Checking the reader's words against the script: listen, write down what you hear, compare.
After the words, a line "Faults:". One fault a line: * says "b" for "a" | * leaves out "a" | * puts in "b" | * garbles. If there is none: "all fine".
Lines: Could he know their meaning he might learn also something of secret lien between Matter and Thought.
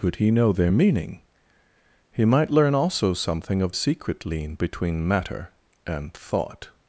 Could he know their meaning he might learn also something of secret lien between Matter and Thought.
Faults:
all fine